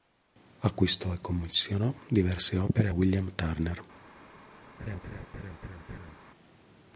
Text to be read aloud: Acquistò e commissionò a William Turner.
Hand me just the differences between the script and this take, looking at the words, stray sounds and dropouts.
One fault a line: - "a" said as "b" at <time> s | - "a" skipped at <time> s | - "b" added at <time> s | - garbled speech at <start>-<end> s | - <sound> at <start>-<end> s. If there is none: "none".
- "diverse opere" added at 2.1 s
- laugh at 4.8-6.2 s